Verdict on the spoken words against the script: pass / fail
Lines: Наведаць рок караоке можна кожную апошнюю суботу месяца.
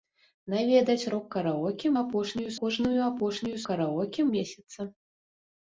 fail